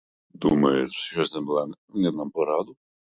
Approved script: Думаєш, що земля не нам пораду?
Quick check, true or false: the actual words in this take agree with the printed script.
true